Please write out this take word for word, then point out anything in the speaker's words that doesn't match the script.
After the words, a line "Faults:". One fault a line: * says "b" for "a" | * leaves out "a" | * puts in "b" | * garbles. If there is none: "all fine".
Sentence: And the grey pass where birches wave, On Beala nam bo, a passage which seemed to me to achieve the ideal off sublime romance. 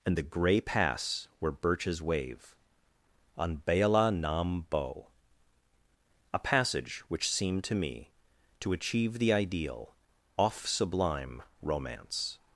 And the grey pass where birches wave, On Beala nam bo, a passage which seemed to me to achieve the ideal off sublime romance.
Faults:
all fine